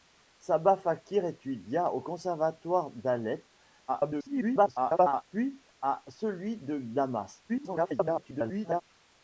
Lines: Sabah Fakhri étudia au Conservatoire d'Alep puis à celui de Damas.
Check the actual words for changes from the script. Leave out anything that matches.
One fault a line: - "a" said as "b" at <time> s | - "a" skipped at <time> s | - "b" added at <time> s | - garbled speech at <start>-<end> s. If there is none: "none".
- garbled speech at 3.9-5.2 s
- garbled speech at 7.5-8.8 s